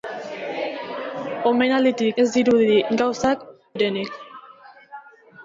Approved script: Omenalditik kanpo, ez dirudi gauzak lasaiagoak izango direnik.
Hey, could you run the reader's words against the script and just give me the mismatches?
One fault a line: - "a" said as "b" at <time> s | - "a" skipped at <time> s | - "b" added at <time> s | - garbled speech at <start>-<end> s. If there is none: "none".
- "kanpo" skipped at 2.2 s
- "lasaiagoak izango" skipped at 3.5 s